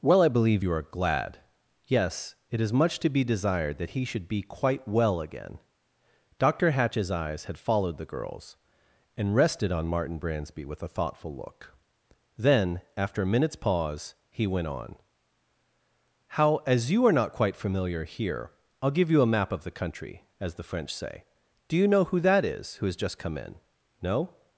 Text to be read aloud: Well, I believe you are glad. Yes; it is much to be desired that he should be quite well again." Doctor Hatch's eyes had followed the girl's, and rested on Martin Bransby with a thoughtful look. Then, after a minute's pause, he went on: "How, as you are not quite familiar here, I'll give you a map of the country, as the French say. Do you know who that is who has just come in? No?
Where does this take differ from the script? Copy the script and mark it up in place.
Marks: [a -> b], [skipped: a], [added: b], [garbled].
Well, I believe you are glad. Yes; it is much to be desired that he should be quite well again." Doctor Hatch's eyes had followed the girl's, and rested on Martin Bransby with a thoughtful look. Then, after a minute's pause, he went on: "How, as you are not quite familiar here, I'll give you a map of the country, as the French say. Do you know who that is who has just come in? No?